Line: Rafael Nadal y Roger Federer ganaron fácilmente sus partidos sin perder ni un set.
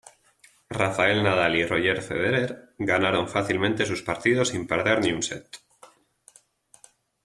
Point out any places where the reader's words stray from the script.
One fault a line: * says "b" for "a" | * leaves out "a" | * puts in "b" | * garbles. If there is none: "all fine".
all fine